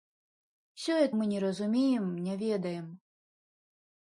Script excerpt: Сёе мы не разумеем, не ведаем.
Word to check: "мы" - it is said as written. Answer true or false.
true